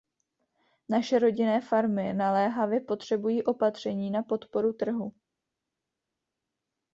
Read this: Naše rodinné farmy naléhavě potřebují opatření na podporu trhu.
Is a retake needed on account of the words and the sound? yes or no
no